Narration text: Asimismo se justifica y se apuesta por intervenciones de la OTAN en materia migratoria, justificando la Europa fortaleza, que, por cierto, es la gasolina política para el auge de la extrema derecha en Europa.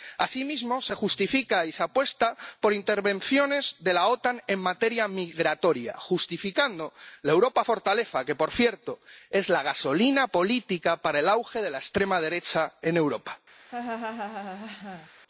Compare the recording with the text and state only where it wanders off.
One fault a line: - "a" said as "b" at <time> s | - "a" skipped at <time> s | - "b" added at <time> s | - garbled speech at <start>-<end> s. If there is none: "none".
none